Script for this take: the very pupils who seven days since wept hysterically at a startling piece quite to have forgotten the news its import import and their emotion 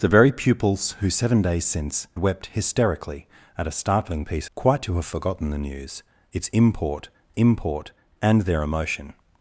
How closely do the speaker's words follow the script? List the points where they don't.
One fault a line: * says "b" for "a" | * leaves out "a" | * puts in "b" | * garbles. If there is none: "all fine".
all fine